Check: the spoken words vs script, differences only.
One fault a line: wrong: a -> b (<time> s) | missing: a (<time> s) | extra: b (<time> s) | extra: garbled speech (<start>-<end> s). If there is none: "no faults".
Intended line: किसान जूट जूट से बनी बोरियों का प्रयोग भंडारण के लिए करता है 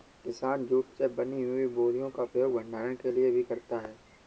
missing: जूट (0.8 s)
extra: हुई (1.4 s)
extra: भी (3.3 s)